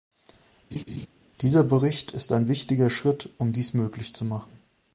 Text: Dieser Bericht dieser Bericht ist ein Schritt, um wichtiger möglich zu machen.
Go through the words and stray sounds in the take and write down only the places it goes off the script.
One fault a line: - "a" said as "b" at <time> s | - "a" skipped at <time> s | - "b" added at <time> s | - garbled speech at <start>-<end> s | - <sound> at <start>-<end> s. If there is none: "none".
- laugh at 0.7-1.1 s
- "dieser Bericht" skipped at 2.1 s
- "wichtiger" added at 2.5 s
- "wichtiger" said as "dies" at 3.5 s